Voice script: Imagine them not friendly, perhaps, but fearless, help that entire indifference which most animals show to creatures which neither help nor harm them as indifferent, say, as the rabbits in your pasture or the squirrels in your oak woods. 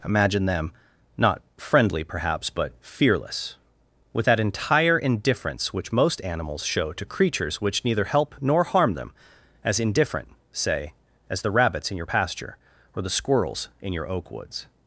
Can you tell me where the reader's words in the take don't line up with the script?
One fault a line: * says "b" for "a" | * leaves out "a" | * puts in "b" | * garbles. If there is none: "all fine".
* says "with" for "help"